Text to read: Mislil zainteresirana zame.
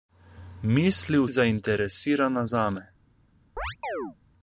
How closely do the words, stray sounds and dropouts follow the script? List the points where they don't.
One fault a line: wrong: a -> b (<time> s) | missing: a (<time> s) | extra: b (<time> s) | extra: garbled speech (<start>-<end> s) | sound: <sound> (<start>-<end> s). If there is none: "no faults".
sound: chirp (3.6-4.2 s)